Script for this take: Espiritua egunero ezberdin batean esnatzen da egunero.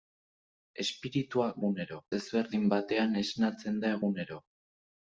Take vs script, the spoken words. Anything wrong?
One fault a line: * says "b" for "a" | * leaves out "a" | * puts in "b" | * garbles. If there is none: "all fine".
all fine